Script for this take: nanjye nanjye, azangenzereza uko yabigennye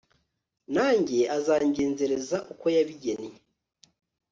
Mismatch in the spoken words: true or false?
true